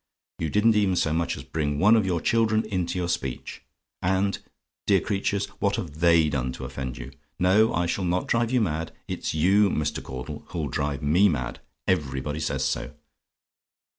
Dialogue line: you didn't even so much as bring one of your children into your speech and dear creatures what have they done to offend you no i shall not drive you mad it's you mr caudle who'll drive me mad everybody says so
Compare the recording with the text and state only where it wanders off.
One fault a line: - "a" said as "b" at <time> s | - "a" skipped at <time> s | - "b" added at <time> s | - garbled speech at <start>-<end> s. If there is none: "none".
none